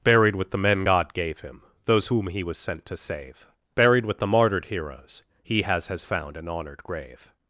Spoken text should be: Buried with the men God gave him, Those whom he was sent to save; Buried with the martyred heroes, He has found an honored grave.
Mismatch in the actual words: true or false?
true